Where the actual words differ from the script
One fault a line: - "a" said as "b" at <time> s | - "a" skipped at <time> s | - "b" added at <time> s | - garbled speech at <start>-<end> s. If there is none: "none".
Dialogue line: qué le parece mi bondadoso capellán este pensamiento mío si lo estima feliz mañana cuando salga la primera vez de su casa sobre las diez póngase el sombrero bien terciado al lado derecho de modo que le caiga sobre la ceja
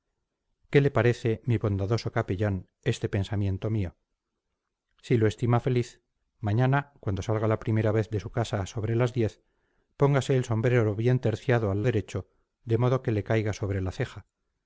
- "lado" skipped at 11.8 s